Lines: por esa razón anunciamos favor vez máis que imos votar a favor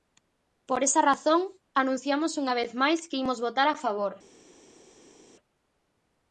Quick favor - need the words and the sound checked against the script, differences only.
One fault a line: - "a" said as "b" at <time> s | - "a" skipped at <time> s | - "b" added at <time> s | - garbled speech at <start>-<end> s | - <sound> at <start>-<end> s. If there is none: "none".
- "favor" said as "unha" at 2.4 s